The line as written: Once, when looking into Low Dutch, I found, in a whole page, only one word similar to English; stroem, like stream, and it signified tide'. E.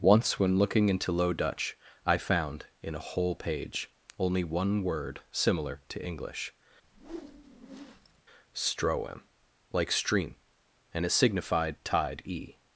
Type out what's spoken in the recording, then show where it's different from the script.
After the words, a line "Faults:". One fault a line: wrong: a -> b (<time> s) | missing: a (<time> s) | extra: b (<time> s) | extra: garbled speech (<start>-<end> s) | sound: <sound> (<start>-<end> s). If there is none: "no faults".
Once, when looking into Low Dutch, I found, in a whole page, only one word similar to English; stroem, like stream, and it signified tide'. E.
Faults:
sound: whoosh (6.8-8.2 s)